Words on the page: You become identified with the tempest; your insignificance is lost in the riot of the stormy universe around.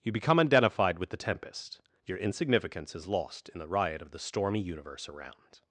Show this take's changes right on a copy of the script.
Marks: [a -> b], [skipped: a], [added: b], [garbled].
You become identified with the tempest; your insignificance is lost in the riot of the stormy universe around.